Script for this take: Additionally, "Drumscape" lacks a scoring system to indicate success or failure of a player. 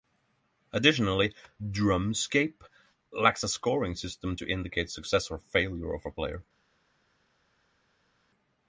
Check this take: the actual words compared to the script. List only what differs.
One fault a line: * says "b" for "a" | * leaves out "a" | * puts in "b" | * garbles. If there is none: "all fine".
all fine